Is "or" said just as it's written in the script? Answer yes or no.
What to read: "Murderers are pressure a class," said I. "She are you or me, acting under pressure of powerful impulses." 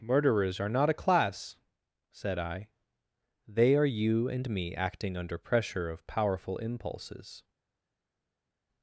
no